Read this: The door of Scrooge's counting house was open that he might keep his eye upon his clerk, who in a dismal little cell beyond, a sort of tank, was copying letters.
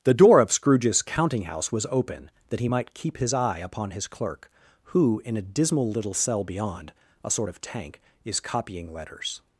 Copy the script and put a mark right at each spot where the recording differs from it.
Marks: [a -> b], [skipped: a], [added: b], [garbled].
The door of Scrooge's counting house was open that he might keep his eye upon his clerk, who in a dismal little cell beyond, a sort of tank, [was -> is] copying letters.